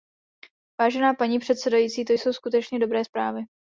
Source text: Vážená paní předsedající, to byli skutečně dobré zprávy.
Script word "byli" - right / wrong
wrong